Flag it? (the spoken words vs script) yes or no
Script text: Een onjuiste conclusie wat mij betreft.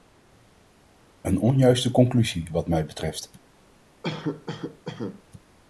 no